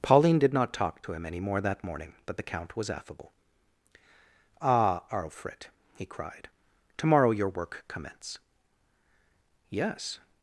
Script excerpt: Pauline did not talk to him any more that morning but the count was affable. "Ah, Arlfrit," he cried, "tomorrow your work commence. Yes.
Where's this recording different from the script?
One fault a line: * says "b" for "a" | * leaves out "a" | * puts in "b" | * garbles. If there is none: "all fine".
all fine